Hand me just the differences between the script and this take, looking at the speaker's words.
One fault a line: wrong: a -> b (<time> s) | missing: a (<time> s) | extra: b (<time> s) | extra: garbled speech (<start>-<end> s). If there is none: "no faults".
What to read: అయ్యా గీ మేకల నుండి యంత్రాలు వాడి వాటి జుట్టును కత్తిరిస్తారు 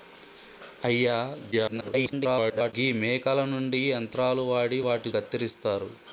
extra: garbled speech (1.5-2.7 s)
missing: జుట్టును (5.1 s)